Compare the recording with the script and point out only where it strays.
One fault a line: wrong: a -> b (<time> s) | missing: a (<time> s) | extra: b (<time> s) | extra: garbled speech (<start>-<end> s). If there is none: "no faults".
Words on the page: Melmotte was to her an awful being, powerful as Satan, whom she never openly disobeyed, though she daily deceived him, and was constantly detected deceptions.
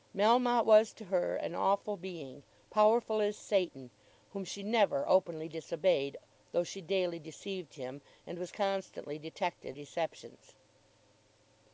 no faults